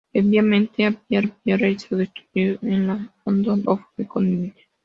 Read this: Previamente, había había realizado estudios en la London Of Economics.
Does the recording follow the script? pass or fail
pass